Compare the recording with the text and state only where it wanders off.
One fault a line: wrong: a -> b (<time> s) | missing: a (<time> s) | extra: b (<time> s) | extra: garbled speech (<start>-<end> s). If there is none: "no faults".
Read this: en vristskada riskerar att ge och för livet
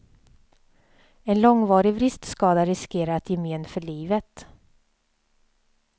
extra: långvarig (1.4 s)
wrong: och -> men (3.4 s)